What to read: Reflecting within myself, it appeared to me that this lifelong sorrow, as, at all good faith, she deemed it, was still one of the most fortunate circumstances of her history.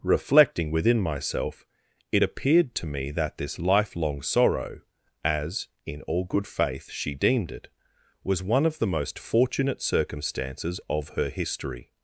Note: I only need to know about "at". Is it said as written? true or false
false